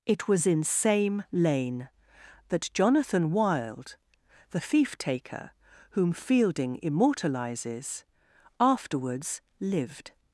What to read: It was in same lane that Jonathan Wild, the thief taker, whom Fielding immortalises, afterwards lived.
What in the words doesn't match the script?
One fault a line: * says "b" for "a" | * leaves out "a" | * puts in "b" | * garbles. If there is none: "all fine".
all fine